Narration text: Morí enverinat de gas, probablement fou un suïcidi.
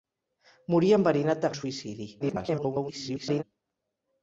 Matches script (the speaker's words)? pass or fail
fail